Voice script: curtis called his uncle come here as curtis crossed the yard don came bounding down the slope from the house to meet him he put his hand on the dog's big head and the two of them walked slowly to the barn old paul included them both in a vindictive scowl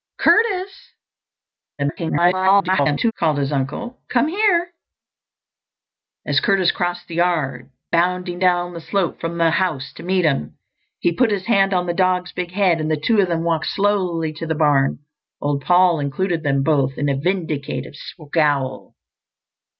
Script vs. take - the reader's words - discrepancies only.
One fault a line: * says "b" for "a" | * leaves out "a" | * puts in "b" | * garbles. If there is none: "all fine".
* garbles
* leaves out "don came"